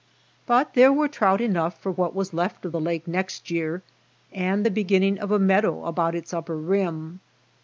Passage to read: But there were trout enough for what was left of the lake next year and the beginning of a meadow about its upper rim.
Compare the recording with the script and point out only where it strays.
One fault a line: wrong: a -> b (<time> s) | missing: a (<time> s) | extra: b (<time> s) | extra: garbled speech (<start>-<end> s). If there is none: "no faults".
no faults